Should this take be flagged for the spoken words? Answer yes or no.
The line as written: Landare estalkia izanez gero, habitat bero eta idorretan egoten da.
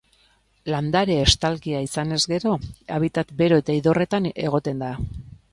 no